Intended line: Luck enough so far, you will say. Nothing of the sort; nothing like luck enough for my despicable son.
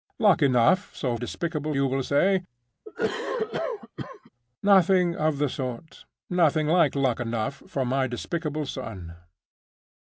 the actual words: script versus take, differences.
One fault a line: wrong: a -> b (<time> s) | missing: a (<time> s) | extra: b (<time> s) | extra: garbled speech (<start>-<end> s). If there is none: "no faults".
wrong: far -> despicable (1.2 s)